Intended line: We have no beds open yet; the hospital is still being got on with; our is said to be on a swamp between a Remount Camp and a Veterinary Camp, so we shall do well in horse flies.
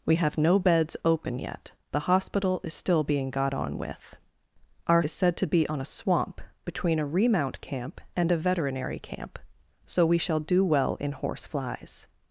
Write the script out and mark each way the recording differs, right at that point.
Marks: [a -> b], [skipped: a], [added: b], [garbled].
We have no beds open yet; the hospital is still being got on with; our is said to be on a swamp between a Remount Camp and a Veterinary Camp, so we shall do well in horse flies.